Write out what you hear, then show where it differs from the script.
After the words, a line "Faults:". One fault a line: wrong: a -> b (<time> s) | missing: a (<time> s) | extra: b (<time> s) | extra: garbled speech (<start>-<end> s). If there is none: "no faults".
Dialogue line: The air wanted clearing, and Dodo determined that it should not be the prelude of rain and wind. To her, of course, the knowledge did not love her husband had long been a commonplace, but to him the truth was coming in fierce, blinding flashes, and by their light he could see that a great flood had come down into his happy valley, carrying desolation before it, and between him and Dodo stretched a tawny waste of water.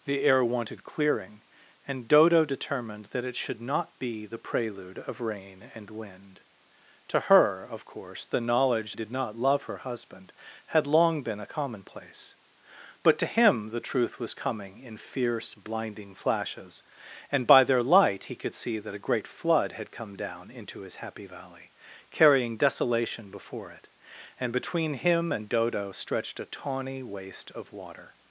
The air wanted clearing, and Dodo determined that it should not be the prelude of rain and wind. To her, of course, the knowledge did not love her husband had long been a commonplace, but to him the truth was coming in fierce, blinding flashes, and by their light he could see that a great flood had come down into his happy valley, carrying desolation before it, and between him and Dodo stretched a tawny waste of water.
Faults:
no faults